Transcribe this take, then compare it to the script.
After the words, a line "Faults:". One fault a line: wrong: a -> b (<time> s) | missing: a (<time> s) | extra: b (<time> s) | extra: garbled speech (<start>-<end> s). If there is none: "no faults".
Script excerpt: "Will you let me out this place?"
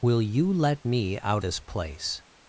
"Will you let me out this place?"
Faults:
no faults